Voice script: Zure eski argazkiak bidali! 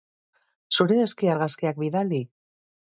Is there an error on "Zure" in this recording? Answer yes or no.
no